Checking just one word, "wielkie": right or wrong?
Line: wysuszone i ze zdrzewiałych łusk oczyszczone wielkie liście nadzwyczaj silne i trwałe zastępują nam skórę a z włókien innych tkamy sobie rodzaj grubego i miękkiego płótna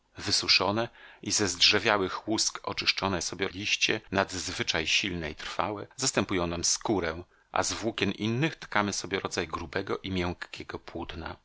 wrong